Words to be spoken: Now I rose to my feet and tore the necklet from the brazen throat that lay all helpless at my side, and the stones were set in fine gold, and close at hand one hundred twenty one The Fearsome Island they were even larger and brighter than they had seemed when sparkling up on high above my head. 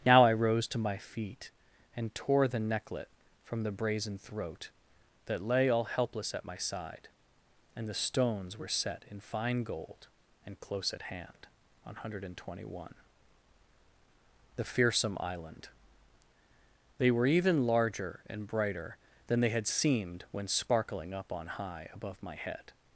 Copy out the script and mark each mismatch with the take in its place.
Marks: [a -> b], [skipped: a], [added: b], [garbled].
Now I rose to my feet and tore the necklet from the brazen throat that lay all helpless at my side, and the stones were set in fine gold, and close at hand one hundred twenty one The Fearsome Island they were even larger and brighter than they had seemed when sparkling up on high above my head.